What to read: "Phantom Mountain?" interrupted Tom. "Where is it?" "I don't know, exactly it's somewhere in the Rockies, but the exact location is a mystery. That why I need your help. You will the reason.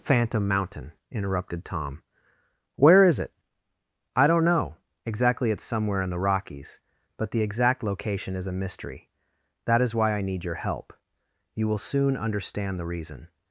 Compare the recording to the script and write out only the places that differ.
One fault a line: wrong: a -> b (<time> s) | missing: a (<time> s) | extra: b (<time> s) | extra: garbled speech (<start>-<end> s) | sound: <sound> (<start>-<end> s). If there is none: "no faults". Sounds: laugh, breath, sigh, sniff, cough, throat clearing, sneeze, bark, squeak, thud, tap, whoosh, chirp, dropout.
extra: is (9.8 s)
extra: soon understand (11.8 s)